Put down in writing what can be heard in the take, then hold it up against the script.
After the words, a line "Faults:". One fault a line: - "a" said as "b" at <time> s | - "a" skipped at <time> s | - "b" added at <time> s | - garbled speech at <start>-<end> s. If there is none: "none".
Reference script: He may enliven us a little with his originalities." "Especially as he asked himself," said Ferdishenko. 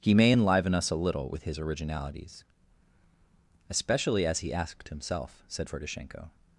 He may enliven us a little with his originalities." "Especially as he asked himself," said Ferdishenko.
Faults:
none